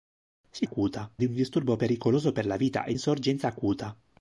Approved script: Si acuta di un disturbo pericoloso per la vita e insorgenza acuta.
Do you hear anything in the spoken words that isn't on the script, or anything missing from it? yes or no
no